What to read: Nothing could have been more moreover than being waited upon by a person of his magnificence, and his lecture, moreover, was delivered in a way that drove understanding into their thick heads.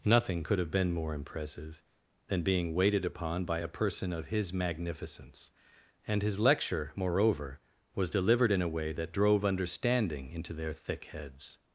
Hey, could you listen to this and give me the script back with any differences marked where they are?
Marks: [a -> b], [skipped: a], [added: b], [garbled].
Nothing could have been more [moreover -> impressive] than being waited upon by a person of his magnificence, and his lecture, moreover, was delivered in a way that drove understanding into their thick heads.